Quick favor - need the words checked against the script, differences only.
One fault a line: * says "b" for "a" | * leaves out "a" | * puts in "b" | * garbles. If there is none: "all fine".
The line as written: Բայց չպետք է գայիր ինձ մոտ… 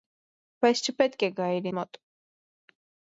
* leaves out "ինձ"